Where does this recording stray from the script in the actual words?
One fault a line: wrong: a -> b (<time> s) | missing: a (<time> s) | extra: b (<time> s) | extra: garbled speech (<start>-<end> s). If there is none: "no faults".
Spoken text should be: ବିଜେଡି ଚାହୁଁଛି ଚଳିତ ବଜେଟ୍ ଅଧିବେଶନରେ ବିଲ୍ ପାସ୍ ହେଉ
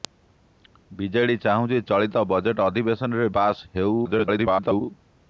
missing: ବିଲ୍ (3.3 s)
extra: garbled speech (4.0-4.8 s)